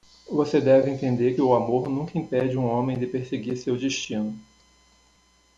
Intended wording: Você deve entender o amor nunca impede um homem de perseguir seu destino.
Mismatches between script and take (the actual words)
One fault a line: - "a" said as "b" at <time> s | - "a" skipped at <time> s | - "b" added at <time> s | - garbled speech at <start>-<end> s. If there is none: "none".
none